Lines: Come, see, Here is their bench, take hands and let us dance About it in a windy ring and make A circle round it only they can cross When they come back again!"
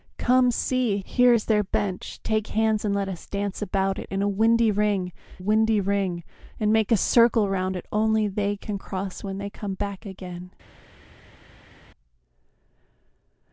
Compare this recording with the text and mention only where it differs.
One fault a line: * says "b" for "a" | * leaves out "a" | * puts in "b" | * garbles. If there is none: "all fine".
* puts in "windy ring"